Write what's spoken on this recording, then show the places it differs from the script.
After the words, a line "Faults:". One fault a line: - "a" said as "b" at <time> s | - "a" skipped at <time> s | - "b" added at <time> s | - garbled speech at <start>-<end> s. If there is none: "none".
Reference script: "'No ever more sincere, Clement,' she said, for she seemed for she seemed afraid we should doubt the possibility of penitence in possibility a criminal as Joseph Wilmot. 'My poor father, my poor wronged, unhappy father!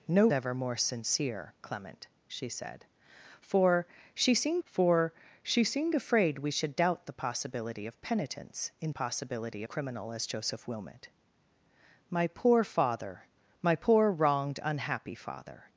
"'No ever more sincere, Clement,' she said, for she seemed for she seemed afraid we should doubt the possibility of penitence in possibility a criminal as Joseph Wilmot. 'My poor father, my poor wronged, unhappy father!
Faults:
none